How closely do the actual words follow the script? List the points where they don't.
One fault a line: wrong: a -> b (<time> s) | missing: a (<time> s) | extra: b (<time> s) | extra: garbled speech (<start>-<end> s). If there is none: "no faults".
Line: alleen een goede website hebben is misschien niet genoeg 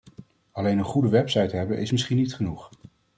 no faults